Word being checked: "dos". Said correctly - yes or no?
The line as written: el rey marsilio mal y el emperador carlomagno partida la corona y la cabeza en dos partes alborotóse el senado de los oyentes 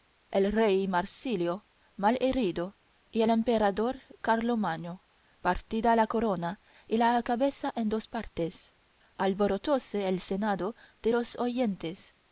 yes